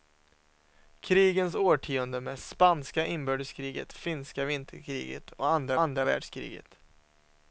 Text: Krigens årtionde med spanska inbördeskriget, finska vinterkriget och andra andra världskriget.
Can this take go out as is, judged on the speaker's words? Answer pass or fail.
pass